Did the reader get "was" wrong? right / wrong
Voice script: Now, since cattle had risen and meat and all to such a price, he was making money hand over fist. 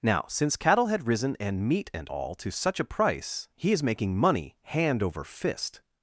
wrong